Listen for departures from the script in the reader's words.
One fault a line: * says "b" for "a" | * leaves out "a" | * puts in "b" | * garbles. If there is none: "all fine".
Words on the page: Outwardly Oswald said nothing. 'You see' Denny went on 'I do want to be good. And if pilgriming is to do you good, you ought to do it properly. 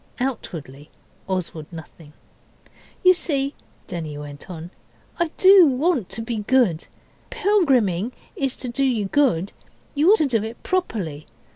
* leaves out "said"
* leaves out "And if"
* leaves out "ought"